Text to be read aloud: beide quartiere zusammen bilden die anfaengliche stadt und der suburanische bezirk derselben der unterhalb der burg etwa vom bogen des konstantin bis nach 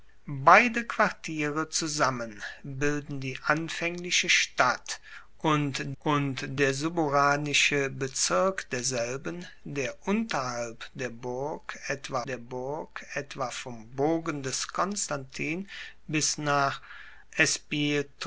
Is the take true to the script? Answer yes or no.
no